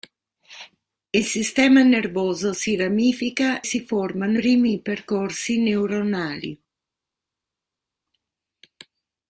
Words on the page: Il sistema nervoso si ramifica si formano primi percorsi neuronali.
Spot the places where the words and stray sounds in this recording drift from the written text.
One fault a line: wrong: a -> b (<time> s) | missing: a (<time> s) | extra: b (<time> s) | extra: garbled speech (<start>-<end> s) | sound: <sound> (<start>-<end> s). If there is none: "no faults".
no faults